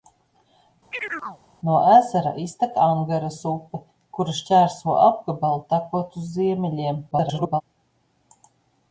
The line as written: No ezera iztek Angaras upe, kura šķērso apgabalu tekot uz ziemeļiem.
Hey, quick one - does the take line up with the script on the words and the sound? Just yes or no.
no